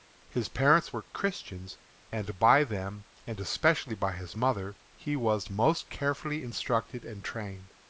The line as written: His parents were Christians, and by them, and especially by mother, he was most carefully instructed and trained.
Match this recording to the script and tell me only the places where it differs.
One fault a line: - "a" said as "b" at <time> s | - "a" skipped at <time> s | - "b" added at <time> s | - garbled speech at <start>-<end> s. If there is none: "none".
- "his" added at 4.1 s